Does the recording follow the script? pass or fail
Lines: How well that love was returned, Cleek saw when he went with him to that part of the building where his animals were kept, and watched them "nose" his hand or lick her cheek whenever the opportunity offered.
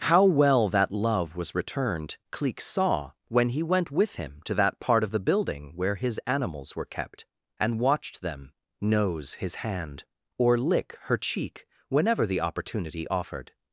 pass